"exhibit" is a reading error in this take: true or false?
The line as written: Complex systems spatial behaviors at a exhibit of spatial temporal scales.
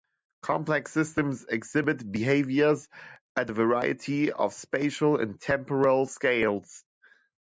true